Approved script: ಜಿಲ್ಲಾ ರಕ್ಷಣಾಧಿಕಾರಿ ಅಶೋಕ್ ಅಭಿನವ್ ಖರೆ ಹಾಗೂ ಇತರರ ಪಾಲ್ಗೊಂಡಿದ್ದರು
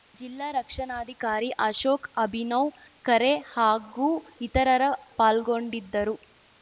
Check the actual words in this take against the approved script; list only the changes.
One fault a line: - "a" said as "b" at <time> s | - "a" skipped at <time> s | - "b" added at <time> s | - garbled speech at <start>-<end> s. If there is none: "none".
none